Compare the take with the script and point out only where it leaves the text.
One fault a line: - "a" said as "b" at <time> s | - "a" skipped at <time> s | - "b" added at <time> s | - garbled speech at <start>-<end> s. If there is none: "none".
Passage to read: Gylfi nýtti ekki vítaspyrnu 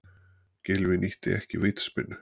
none